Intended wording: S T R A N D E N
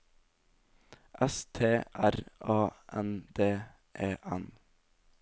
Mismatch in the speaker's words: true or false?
false